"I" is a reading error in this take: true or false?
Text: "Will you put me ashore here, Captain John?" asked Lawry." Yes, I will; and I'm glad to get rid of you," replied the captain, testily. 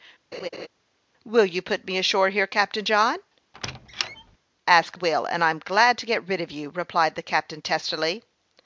true